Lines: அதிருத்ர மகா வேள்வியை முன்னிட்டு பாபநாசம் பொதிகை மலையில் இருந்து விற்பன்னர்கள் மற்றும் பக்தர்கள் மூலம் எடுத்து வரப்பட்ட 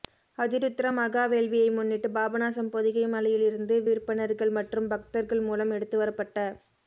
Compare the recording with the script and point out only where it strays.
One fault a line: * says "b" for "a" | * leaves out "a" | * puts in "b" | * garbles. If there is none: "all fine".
all fine